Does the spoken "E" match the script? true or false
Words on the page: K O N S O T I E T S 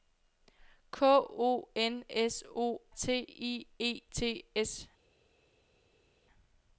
true